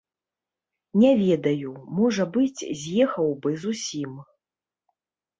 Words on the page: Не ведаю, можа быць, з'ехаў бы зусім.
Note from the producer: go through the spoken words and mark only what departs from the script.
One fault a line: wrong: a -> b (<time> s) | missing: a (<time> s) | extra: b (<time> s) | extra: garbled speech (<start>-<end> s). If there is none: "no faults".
no faults